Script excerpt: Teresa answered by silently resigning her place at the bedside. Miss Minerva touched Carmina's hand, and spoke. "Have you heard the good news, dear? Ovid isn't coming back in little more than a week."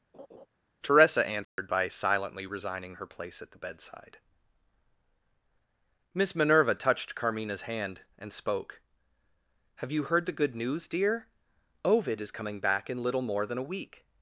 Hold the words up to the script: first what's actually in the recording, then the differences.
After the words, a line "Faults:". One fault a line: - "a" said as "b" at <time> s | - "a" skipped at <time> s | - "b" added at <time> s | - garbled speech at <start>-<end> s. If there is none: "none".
Teresa answered by silently resigning her place at the bedside. Miss Minerva touched Carmina's hand, and spoke. "Have you heard the good news, dear? Ovid is coming back in little more than a week."
Faults:
- "isn't" said as "is" at 12.2 s